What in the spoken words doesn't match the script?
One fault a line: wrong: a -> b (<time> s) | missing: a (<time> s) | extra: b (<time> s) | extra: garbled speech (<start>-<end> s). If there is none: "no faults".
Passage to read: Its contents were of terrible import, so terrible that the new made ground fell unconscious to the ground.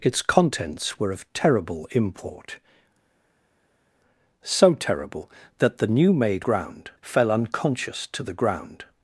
no faults